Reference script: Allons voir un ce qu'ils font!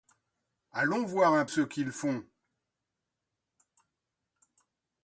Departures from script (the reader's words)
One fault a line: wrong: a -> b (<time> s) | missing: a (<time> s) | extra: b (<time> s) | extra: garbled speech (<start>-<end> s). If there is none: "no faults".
no faults